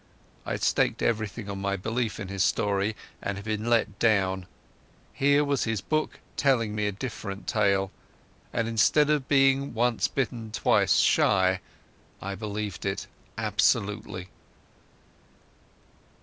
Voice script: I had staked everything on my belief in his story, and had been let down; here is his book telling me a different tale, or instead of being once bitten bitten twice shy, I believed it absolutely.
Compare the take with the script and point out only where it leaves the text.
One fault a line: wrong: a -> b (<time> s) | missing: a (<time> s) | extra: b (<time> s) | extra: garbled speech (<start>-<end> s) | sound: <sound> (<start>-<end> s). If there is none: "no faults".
wrong: is -> was (5.5 s)
wrong: or -> and (8.5 s)
missing: bitten (10.5 s)